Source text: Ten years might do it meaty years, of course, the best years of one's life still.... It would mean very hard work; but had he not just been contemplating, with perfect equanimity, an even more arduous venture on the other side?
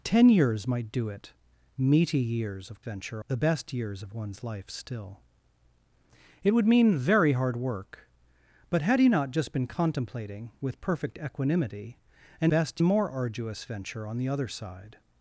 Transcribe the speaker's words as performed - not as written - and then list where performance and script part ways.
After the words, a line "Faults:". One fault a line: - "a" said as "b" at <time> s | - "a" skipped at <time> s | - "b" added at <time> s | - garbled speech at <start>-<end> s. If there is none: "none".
Ten years might do it meaty years, of venture, the best years of one's life still.... It would mean very hard work; but had he not just been contemplating, with perfect equanimity, an best more arduous venture on the other side?
Faults:
- "course" said as "venture" at 2.8 s
- "even" said as "best" at 12.5 s